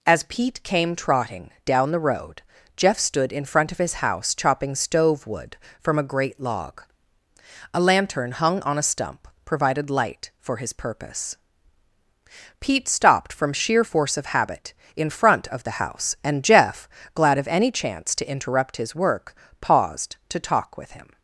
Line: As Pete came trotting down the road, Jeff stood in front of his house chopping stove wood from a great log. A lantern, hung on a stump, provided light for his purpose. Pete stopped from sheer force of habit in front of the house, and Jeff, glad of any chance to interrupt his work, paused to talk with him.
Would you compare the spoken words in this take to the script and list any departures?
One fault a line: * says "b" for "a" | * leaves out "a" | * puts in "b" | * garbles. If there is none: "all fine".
all fine